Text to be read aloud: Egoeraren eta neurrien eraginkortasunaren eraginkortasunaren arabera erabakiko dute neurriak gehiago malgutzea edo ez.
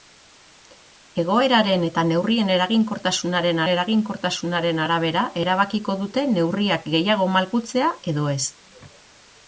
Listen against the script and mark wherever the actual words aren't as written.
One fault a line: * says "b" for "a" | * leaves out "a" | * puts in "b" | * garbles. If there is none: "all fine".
all fine